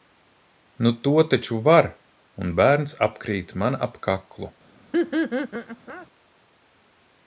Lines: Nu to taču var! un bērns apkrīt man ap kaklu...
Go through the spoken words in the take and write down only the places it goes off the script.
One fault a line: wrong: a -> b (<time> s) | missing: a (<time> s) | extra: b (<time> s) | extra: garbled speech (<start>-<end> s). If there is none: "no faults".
no faults